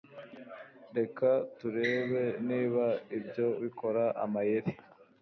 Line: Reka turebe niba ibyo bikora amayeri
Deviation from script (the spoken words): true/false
false